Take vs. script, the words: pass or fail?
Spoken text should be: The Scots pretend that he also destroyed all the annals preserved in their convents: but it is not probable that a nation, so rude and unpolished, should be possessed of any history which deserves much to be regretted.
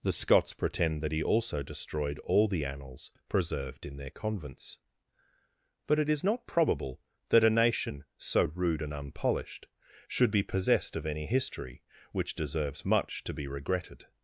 pass